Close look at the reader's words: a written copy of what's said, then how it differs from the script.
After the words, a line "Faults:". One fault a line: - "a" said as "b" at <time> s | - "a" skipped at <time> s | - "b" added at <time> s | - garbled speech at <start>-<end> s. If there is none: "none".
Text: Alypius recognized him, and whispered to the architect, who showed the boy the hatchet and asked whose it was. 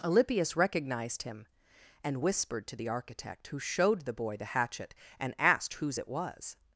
Alypius recognized him, and whispered to the architect, who showed the boy the hatchet and asked whose it was.
Faults:
none